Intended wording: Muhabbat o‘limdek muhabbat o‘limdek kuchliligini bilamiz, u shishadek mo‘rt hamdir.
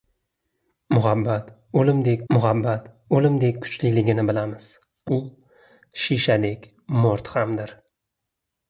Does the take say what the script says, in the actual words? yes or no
yes